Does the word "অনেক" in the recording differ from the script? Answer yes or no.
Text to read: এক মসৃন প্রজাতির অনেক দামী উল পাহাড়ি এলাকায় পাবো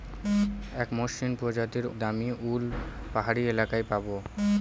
yes